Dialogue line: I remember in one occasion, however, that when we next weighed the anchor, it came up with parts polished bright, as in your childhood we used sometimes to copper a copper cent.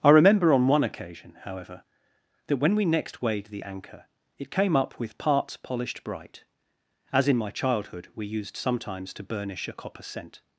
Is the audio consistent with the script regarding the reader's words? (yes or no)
no